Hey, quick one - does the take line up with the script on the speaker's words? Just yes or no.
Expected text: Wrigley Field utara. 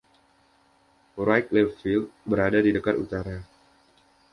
no